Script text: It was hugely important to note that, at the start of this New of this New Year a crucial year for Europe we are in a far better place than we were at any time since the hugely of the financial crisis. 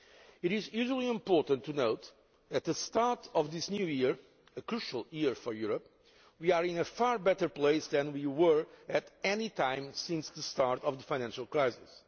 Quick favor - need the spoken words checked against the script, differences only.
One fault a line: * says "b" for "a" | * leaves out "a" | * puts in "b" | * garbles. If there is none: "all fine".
* says "is" for "was"
* leaves out "of this New"
* says "start" for "hugely"